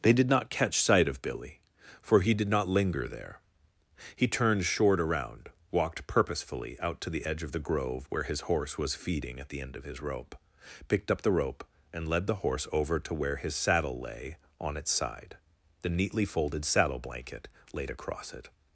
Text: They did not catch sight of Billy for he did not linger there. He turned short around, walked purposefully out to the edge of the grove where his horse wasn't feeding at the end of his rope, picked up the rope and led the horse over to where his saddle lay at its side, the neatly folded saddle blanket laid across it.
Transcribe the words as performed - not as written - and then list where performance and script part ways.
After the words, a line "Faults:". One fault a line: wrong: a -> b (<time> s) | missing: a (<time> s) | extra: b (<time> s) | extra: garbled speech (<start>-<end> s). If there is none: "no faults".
They did not catch sight of Billy for he did not linger there. He turned short around, walked purposefully out to the edge of the grove where his horse was feeding at the end of his rope, picked up the rope and led the horse over to where his saddle lay on its side, the neatly folded saddle blanket laid across it.
Faults:
wrong: wasn't -> was (8.8 s)
wrong: at -> on (14.6 s)